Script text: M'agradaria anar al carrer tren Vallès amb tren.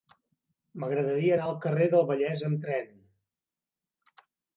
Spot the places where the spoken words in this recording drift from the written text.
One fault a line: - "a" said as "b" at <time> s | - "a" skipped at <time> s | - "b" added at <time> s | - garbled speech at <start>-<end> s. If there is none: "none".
- "tren" said as "del" at 1.9 s